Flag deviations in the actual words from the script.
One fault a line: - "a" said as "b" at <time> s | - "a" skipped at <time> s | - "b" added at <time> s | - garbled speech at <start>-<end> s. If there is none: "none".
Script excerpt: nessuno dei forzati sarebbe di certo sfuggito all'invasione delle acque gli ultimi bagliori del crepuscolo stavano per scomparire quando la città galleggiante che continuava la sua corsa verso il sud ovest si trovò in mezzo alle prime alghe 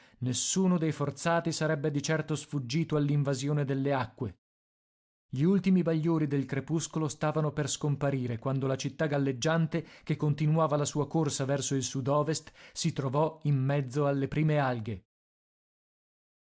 none